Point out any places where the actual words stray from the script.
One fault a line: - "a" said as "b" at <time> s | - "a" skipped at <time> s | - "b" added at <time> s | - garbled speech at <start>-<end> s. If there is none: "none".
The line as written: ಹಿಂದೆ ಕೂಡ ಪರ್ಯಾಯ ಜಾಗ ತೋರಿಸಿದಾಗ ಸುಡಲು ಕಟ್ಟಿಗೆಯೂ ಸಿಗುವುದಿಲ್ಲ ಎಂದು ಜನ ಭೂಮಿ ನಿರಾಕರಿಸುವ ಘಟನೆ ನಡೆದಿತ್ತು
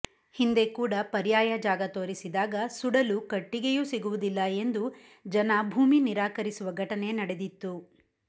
none